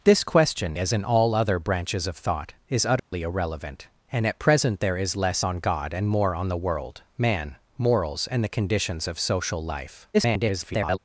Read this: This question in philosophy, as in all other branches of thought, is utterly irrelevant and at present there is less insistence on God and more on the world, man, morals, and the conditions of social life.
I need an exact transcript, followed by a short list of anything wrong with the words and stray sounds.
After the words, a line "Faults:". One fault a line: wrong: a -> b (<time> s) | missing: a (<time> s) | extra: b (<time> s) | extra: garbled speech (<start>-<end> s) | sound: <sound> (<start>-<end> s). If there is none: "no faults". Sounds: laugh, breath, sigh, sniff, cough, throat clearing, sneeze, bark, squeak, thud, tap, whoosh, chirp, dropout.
This question as in all other branches of thought, is utterly irrelevant and at present there is less on God and more on the world, man, morals, and the conditions of social life. [garbled]
Faults:
missing: in philosophy (0.8 s)
sound: dropout (3.0-3.1 s)
missing: insistence (5.4 s)
extra: garbled speech (10.1-11.0 s)